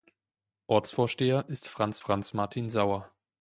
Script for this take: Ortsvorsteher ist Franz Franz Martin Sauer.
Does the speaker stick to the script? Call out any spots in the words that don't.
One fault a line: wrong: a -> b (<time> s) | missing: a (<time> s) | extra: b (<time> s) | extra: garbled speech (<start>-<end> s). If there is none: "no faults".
no faults